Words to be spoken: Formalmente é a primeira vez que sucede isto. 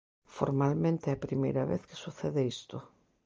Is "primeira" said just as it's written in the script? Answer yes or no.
yes